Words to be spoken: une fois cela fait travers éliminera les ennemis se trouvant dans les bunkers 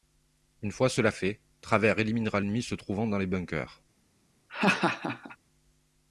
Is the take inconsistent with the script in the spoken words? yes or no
yes